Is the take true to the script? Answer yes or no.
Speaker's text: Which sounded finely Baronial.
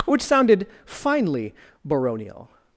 yes